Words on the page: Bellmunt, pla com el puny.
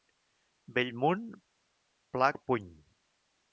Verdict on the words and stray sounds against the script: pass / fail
fail